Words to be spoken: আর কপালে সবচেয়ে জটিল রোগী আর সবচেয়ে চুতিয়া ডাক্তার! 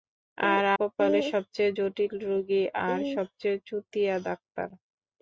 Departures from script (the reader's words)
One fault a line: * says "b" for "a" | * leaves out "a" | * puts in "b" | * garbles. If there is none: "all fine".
all fine